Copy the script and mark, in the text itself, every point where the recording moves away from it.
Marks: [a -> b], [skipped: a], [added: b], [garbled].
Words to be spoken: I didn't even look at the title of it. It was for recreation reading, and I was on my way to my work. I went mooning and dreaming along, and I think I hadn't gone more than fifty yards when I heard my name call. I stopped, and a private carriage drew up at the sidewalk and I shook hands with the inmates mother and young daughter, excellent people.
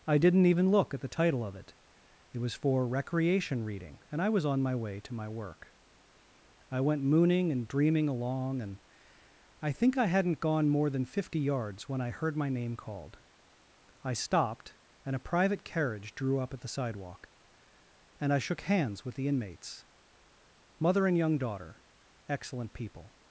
I didn't even look at the title of it. It was for recreation reading, and I was on my way to my work. I went mooning and dreaming along, and I think I hadn't gone more than fifty yards when I heard my name [call. -> called] I stopped, and a private carriage drew up at the sidewalk and I shook hands with the inmates mother and young daughter, excellent people.